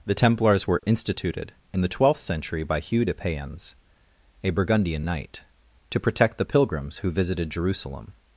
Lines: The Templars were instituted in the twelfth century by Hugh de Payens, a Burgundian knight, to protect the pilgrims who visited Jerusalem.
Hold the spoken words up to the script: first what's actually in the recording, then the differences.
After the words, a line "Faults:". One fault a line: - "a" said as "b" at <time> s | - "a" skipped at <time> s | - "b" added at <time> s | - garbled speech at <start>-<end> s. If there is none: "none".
The Templars were instituted in the twelfth century by Hugh de Payens, a Burgundian knight, to protect the pilgrims who visited Jerusalem.
Faults:
none